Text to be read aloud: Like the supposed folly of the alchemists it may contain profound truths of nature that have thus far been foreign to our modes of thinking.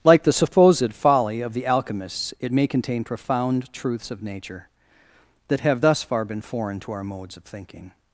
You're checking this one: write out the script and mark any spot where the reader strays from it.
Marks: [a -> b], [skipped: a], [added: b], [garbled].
Like the supposed folly of the alchemists it may contain profound truths of nature that have thus far been foreign to our modes of thinking.